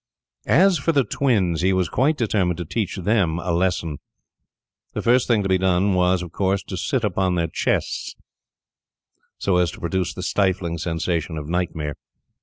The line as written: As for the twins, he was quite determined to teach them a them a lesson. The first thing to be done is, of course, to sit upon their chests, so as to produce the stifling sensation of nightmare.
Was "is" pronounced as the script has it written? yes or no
no